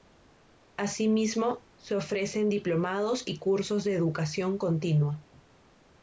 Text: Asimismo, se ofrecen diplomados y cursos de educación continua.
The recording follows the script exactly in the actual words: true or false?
true